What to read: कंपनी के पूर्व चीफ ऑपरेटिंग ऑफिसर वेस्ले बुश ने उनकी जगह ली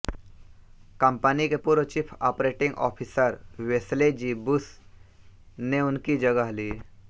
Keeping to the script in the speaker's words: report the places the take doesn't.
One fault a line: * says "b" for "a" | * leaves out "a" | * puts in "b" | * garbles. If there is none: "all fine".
* puts in "जी"